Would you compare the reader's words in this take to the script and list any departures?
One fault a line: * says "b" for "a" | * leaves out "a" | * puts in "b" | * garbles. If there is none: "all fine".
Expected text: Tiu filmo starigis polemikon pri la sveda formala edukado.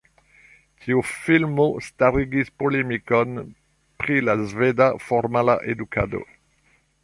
all fine